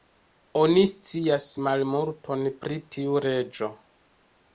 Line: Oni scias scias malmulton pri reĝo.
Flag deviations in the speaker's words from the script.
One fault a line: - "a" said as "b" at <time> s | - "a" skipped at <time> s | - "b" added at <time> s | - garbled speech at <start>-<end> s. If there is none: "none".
- "scias" skipped at 1.4 s
- "tiu" added at 3.0 s